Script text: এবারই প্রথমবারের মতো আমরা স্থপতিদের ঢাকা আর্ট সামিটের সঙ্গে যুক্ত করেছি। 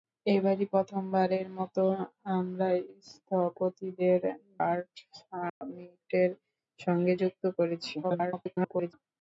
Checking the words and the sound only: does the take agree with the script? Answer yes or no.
no